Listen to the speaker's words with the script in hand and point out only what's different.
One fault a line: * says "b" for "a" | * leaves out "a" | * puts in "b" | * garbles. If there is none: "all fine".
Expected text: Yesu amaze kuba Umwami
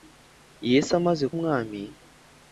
* leaves out "kuba"